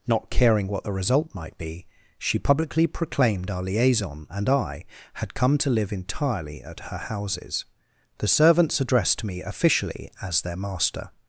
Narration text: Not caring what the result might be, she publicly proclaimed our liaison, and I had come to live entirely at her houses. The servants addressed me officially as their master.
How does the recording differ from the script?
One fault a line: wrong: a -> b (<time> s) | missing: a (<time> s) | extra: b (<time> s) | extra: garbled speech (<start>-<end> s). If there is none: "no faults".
no faults